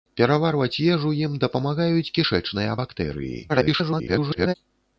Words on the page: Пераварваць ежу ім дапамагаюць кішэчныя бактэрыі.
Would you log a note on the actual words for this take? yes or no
yes